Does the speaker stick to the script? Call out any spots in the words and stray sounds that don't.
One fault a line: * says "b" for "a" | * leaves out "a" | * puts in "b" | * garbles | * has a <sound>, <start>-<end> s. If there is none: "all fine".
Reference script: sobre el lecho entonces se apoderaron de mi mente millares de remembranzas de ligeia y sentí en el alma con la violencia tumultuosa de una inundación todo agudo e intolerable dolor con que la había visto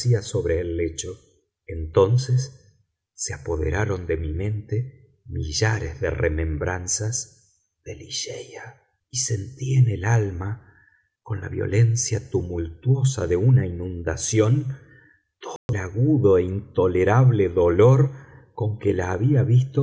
* has a dropout, 15.6-15.7 s